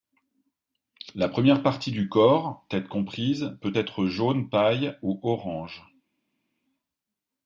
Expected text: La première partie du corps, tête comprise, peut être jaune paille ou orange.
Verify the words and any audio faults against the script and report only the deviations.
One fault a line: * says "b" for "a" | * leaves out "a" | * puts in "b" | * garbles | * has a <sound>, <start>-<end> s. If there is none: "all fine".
all fine